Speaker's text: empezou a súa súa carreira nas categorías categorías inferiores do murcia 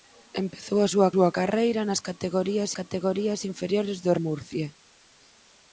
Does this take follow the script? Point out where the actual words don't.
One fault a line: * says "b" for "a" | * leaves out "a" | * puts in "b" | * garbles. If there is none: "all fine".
all fine